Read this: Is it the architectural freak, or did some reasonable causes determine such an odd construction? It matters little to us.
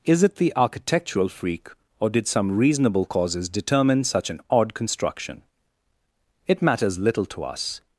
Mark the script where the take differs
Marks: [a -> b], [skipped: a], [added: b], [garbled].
Is it the architectural freak, or did some reasonable causes determine such an odd construction? It matters little to us.